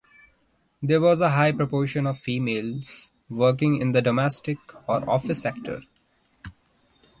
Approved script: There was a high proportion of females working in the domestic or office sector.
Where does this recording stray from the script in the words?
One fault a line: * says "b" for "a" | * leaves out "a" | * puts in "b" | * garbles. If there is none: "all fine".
all fine